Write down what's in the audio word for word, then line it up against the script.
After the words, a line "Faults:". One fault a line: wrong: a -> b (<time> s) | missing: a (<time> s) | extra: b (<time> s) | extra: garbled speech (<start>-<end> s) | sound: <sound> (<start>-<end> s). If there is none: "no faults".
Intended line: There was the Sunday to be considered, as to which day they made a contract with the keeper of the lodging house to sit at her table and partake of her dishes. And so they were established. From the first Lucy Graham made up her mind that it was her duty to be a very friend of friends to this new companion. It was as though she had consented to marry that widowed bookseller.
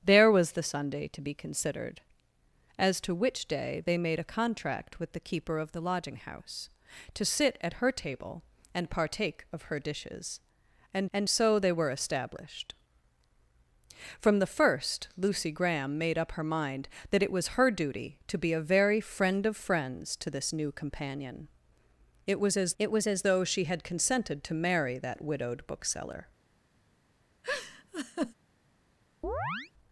There was the Sunday to be considered, as to which day they made a contract with the keeper of the lodging house to sit at her table and partake of her dishes. And and so they were established. From the first Lucy Graham made up her mind that it was her duty to be a very friend of friends to this new companion. It was as it was as though she had consented to marry that widowed bookseller.
Faults:
extra: and (11.1 s)
extra: it was as (22.8 s)
sound: laugh (27.4-28.3 s)
sound: chirp (29.2-29.7 s)